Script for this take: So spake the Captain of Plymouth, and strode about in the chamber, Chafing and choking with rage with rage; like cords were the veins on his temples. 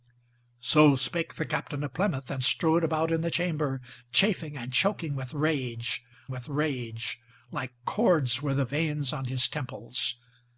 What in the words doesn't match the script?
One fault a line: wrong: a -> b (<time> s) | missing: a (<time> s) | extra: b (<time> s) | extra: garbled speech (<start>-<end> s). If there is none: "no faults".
no faults